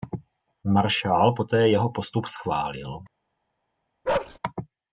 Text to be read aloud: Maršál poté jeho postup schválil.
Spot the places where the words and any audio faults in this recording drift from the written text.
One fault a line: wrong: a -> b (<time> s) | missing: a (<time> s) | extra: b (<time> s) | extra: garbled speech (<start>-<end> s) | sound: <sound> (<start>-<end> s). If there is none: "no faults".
sound: bark (4.0-4.4 s)